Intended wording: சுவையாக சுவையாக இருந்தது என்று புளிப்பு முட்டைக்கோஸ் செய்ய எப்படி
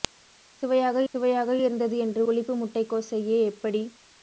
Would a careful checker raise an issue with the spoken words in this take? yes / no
no